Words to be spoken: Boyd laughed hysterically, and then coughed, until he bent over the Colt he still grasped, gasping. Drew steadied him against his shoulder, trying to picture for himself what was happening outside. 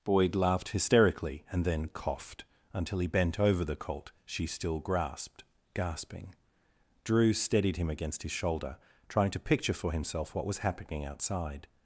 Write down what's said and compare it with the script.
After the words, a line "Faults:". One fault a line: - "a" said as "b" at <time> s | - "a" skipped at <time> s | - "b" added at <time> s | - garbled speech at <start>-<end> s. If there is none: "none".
Boyd laughed hysterically, and then coughed, until he bent over the Colt she still grasped, gasping. Drew steadied him against his shoulder, trying to picture for himself what was happening outside.
Faults:
- "he" said as "she" at 4.2 s